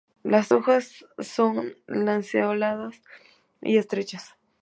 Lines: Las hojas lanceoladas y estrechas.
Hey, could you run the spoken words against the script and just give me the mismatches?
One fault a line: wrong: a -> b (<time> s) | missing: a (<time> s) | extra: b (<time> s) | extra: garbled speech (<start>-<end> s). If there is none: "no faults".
extra: son (1.2 s)